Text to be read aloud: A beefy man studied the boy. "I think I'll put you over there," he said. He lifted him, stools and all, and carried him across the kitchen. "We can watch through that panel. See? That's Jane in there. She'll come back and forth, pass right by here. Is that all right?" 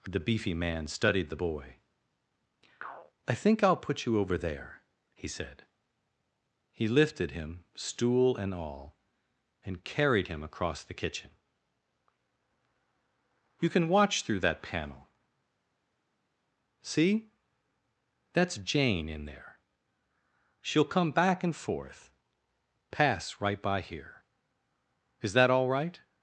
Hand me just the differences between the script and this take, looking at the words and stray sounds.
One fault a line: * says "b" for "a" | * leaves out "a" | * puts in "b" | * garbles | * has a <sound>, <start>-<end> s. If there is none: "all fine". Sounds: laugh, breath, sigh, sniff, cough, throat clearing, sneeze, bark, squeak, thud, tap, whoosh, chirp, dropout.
* says "The" for "A"
* says "stool" for "stools"
* says "You" for "We"